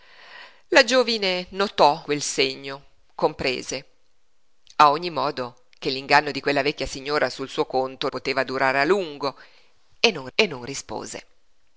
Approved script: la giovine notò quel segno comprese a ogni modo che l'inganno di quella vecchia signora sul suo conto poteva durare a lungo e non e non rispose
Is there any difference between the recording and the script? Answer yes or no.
no